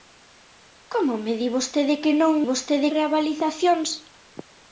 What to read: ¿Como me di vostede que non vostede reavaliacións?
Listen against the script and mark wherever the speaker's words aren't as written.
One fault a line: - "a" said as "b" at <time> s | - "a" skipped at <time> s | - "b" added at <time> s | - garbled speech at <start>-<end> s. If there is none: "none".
none